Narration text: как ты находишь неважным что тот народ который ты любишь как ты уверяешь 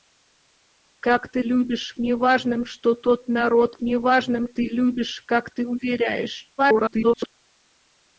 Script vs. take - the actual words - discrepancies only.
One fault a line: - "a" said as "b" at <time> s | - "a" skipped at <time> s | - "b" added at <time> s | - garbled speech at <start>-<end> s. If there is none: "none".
- "находишь" said as "любишь" at 1.4 s
- "который" said as "неважным" at 3.8 s
- garbled speech at 6.6-7.3 s